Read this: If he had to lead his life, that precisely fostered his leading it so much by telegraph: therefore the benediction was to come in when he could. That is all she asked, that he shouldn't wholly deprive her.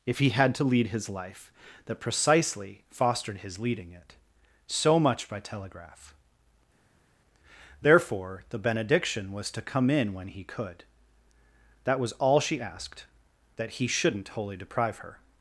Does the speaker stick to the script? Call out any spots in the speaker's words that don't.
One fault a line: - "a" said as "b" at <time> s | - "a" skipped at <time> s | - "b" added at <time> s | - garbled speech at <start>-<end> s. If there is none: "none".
- "is" said as "was" at 12.0 s